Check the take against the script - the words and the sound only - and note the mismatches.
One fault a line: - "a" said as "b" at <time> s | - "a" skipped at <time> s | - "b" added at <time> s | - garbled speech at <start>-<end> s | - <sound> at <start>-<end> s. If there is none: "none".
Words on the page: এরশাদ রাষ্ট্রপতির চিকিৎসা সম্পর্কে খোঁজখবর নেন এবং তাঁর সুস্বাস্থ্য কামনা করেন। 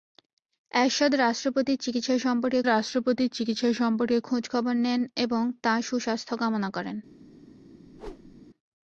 - "রাষ্ট্রপতির চিকিৎসা সম্পর্কে" added at 2.6 s
- whoosh at 7.9-8.4 s